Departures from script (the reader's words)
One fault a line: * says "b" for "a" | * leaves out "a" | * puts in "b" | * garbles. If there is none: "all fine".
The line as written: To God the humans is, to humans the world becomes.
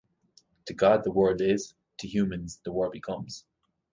* says "world" for "humans"